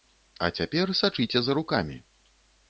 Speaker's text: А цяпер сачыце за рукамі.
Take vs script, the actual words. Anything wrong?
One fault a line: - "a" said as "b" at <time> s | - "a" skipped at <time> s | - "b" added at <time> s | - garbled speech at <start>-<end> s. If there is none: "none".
none